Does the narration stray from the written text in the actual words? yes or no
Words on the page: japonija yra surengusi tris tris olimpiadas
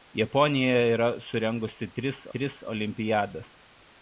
no